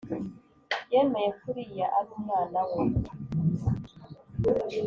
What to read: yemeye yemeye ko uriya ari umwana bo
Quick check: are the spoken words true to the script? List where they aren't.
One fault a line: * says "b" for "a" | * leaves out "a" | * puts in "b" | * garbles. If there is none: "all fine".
* leaves out "yemeye"
* says "we" for "bo"